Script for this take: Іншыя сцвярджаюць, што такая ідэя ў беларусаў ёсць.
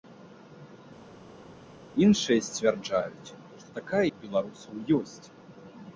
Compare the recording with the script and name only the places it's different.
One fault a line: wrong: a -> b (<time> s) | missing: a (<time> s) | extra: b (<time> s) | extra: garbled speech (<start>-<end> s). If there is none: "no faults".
missing: ідэя (4.0 s)